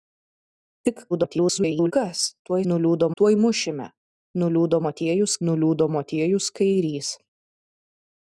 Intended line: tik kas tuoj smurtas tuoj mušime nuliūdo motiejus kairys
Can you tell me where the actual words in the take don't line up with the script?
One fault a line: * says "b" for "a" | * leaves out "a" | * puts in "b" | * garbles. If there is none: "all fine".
* garbles
* says "nuliūdo" for "smurtas"
* puts in "nuliūdo motiejus"